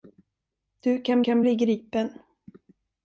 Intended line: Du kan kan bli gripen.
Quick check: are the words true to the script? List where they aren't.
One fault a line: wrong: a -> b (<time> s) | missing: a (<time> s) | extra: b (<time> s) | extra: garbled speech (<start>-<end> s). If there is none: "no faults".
no faults